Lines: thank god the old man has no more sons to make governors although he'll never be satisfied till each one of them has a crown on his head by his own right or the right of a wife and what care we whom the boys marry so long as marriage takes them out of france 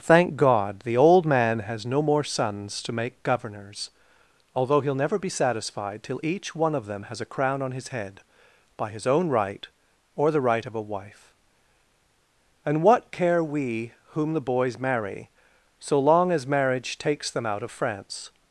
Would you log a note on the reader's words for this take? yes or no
no